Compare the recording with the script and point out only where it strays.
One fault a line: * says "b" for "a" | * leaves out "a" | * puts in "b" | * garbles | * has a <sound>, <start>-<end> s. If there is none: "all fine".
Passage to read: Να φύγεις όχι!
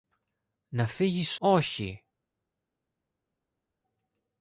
all fine